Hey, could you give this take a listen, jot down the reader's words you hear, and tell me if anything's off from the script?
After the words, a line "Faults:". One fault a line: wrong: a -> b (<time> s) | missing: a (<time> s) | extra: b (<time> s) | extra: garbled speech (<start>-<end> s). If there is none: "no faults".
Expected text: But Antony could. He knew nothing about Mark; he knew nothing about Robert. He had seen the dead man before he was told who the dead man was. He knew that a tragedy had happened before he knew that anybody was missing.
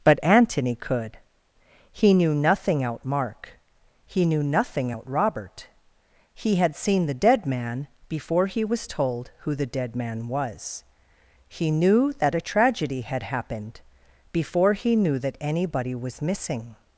But Antony could. He knew nothing out Mark; he knew nothing out Robert. He had seen the dead man before he was told who the dead man was. He knew that a tragedy had happened before he knew that anybody was missing.
Faults:
wrong: about -> out (2.8 s)
wrong: about -> out (4.9 s)